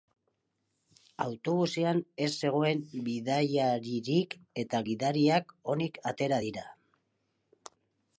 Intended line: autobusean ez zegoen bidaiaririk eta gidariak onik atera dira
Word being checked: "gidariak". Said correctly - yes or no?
yes